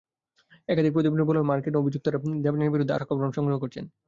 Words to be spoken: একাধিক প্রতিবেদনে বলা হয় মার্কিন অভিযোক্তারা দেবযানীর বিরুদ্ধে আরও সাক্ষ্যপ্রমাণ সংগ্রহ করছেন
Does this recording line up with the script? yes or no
no